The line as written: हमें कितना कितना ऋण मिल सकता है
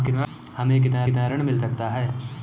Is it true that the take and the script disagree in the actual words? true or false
false